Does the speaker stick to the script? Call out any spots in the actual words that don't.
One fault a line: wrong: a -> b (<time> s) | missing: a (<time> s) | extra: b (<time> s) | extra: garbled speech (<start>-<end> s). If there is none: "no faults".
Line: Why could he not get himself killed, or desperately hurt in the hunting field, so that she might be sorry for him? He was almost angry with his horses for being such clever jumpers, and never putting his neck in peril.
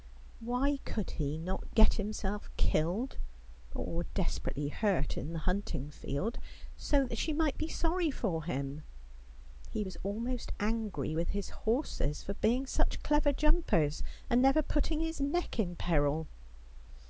no faults